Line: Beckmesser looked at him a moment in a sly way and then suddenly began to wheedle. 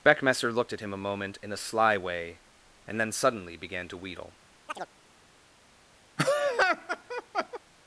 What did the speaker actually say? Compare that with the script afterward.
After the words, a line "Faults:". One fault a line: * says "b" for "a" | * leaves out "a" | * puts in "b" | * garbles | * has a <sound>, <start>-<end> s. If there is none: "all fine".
Beckmesser looked at him a moment in a sly way and then suddenly began to wheedle.
Faults:
* has a chirp, 4.7-4.9 s
* has a laugh, 6.2-7.6 s